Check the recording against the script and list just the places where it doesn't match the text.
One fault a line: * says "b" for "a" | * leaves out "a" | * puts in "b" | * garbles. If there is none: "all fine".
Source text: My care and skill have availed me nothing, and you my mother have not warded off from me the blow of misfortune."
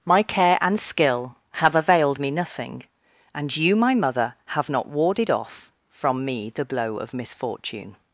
all fine